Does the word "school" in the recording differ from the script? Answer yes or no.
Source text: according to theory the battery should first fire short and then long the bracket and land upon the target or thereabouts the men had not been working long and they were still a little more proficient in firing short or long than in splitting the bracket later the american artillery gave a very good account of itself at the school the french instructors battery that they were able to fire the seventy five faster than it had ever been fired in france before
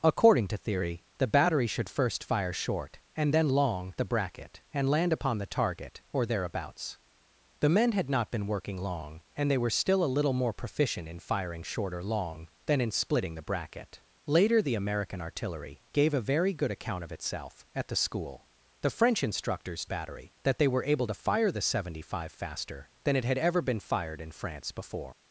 no